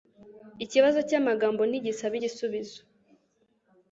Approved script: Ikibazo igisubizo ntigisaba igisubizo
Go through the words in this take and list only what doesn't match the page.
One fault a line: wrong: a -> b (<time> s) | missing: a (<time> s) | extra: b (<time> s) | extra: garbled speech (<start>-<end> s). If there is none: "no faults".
wrong: igisubizo -> cyamagambo (1.1 s)